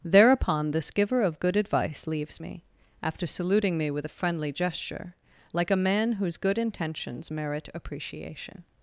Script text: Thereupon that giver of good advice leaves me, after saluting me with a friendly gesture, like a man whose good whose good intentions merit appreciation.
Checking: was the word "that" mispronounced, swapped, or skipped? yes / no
yes